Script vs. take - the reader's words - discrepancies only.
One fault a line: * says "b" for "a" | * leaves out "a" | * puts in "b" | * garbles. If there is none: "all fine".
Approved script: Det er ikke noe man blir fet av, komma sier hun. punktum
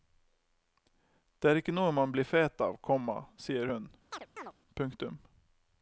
all fine